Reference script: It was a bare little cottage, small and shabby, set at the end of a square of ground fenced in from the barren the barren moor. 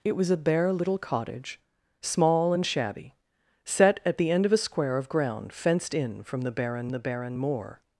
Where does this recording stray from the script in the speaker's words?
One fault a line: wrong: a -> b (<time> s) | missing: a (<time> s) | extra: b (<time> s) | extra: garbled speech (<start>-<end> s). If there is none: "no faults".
no faults